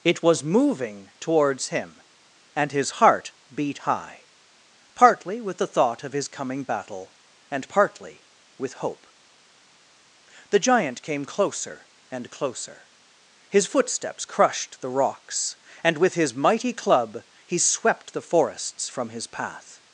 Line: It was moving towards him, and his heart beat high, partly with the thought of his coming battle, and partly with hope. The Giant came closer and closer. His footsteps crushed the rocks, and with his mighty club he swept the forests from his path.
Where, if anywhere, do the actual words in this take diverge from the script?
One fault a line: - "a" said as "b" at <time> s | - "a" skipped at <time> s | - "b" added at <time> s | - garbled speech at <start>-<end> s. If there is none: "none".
none